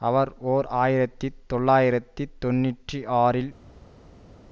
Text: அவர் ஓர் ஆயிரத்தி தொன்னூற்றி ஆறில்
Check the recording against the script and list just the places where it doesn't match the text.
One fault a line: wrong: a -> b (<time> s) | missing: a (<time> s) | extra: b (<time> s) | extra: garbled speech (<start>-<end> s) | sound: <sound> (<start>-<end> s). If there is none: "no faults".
extra: தொள்ளாயிரத்தி (1.5 s)